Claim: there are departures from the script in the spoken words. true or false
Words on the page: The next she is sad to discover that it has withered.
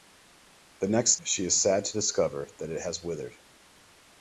false